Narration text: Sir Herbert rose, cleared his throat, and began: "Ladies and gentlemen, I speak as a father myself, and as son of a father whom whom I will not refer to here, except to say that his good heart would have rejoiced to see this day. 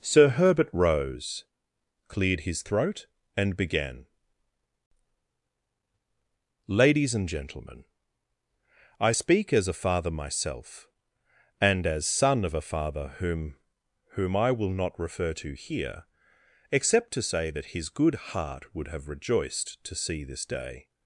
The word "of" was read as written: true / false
true